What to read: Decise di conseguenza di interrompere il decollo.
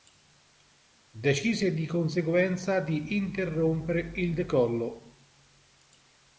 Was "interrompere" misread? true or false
false